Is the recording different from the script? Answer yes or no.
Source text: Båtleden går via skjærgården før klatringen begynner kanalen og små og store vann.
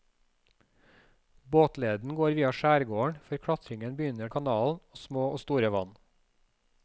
no